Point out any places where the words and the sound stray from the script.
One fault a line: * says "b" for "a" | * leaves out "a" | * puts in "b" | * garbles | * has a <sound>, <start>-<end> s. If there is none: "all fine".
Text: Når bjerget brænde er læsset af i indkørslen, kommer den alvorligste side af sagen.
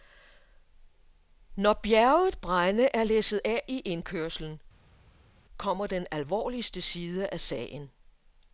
all fine